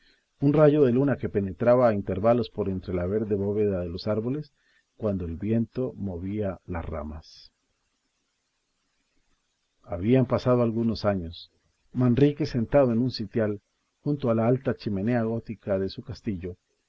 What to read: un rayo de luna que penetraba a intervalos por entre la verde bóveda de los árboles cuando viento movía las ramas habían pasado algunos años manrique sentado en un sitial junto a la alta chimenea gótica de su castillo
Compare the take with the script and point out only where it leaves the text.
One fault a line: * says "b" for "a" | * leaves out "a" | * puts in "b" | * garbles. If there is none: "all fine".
* puts in "el"